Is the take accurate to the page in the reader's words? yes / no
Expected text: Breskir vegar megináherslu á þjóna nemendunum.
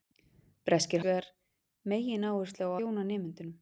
yes